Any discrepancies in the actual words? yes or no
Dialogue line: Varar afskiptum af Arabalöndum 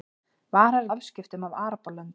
no